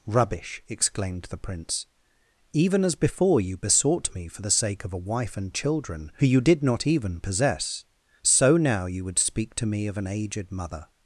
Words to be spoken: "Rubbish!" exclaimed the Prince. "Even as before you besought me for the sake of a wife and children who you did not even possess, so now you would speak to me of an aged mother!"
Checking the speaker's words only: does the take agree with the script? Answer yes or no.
yes